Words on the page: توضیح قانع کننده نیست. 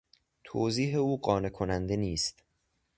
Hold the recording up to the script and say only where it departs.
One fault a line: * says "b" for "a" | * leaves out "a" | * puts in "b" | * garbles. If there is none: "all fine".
* puts in "او"